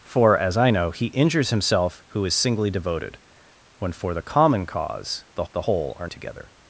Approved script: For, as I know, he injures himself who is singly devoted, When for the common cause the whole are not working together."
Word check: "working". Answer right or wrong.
wrong